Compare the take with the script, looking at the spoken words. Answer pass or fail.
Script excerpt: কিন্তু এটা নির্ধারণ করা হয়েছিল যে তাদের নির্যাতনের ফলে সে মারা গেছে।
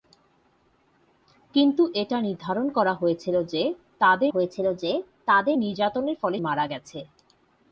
fail